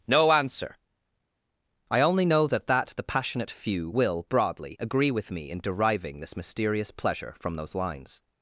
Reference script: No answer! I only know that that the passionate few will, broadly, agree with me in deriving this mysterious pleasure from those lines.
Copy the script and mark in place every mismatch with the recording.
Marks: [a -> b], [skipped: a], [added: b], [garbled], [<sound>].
No answer! I only know that that the passionate few will, broadly, agree with me in deriving this mysterious pleasure from those lines.